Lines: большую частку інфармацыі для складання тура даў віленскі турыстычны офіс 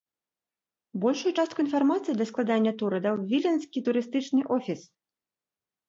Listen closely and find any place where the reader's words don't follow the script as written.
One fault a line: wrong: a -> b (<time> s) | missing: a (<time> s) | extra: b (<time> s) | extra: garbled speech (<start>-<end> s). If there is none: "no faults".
no faults